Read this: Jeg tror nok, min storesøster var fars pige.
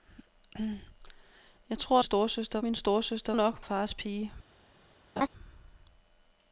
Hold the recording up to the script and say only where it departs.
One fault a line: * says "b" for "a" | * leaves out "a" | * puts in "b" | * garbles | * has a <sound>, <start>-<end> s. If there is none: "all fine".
* says "storesøster" for "nok"
* says "nok" for "var"
* has a laugh, 5.2-5.3 s